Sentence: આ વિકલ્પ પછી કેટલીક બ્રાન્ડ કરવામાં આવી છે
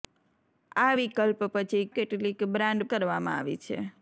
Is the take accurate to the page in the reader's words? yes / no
yes